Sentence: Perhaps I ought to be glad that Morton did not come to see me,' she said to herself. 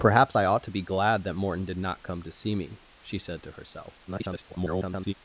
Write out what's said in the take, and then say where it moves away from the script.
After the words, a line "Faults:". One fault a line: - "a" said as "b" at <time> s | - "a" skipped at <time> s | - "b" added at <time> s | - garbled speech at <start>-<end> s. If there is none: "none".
Perhaps I ought to be glad that Morton did not come to see me,' she said to herself. [garbled]
Faults:
- garbled speech at 4.1-5.1 s